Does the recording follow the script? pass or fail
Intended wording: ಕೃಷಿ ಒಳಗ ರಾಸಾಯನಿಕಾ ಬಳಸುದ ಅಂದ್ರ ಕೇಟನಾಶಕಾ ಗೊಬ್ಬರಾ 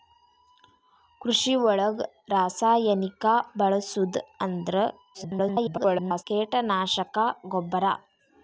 fail